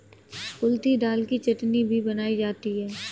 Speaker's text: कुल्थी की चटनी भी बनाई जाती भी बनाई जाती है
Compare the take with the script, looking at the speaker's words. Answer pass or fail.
fail